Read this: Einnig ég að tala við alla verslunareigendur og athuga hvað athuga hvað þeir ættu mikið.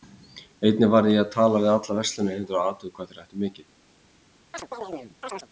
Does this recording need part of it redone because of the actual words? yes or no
yes